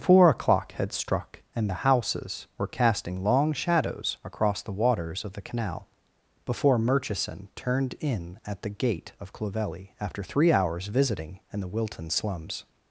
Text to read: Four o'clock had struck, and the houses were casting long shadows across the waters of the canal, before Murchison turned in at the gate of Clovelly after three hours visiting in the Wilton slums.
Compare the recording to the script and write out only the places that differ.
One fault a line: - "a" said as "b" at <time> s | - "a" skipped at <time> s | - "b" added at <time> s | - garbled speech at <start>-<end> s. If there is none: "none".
none